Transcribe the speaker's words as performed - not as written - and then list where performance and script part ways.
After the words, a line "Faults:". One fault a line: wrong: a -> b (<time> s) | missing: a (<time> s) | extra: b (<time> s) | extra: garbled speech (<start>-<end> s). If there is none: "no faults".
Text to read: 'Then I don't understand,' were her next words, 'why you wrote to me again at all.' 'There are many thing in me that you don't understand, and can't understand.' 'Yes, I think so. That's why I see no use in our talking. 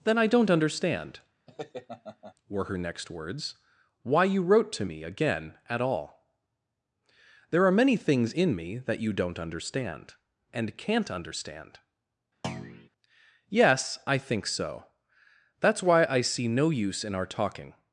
'Then I don't understand,' were her next words, 'why you wrote to me again at all.' 'There are many things in me that you don't understand, and can't understand.' 'Yes, I think so. That's why I see no use in our talking.
Faults:
wrong: thing -> things (8.0 s)